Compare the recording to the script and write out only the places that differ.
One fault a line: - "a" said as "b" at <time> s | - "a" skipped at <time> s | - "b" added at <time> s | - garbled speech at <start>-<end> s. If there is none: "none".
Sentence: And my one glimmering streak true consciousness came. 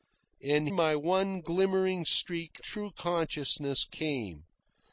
none